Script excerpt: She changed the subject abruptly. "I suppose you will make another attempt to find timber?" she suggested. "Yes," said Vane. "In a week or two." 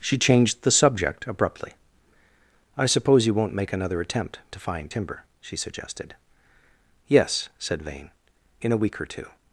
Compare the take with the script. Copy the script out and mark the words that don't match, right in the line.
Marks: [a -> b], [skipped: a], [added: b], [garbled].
She changed the subject abruptly. "I suppose you [will -> won't] make another attempt to find timber?" she suggested. "Yes," said Vane. "In a week or two."